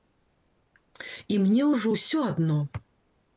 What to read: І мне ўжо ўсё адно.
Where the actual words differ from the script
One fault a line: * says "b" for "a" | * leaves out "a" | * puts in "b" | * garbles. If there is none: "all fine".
all fine